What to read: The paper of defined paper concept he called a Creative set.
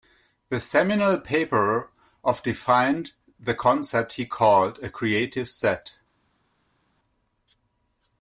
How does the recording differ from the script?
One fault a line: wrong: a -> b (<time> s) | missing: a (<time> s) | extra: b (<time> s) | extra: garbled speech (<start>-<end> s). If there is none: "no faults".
extra: seminal (0.6 s)
wrong: paper -> the (3.4 s)